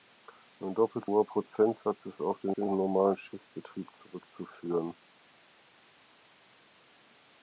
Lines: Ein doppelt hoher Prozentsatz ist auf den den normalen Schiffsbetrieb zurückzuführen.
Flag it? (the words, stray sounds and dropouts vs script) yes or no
no